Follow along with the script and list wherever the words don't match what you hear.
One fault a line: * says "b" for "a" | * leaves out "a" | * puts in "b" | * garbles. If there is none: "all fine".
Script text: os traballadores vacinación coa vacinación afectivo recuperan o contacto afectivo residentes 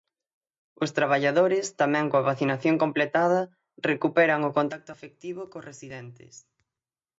* says "tamén" for "vacinación"
* says "completada" for "afectivo"
* puts in "cos"